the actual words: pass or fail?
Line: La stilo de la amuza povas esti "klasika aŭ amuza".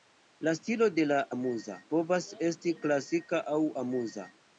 pass